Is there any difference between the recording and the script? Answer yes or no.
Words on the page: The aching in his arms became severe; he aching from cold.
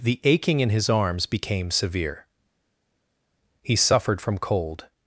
yes